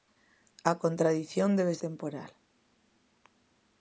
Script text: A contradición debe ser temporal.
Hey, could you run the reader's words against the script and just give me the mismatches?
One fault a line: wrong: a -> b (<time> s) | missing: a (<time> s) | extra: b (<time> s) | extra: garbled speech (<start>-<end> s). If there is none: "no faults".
missing: ser (1.8 s)